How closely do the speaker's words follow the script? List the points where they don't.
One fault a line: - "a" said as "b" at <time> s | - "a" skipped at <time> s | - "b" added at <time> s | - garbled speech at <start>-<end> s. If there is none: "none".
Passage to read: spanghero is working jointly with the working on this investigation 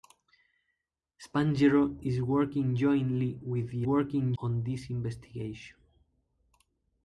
none